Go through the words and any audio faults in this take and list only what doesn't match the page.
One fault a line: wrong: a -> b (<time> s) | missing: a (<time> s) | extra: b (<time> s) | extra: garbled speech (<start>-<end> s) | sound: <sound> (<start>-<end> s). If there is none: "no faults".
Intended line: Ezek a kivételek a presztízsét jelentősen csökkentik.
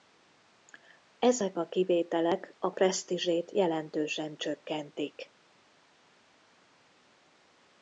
no faults